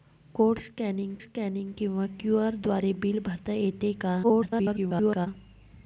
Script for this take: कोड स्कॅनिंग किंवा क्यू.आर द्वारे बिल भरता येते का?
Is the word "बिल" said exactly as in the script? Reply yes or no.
yes